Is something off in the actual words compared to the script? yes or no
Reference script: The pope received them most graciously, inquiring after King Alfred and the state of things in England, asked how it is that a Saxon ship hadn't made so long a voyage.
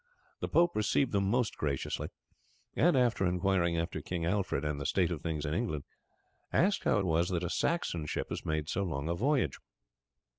yes